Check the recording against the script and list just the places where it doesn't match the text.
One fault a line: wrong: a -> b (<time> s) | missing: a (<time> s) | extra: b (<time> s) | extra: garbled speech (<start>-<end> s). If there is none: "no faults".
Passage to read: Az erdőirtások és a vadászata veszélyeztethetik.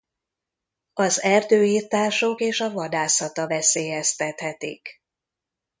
no faults